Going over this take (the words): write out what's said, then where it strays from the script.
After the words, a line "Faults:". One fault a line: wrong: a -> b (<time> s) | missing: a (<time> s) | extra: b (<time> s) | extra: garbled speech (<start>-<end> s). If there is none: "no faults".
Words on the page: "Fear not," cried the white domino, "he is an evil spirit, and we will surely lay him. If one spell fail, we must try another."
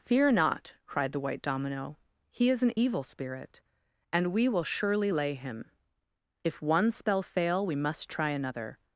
"Fear not," cried the white domino, "he is an evil spirit, and we will surely lay him. If one spell fail, we must try another."
Faults:
no faults